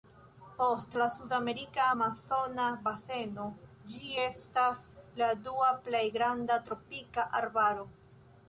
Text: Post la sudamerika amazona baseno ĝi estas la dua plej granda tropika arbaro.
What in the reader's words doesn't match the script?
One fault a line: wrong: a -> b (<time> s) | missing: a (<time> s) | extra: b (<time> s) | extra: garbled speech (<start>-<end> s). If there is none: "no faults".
no faults